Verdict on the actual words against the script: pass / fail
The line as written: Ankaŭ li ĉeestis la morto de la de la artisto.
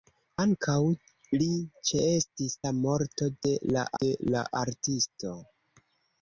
pass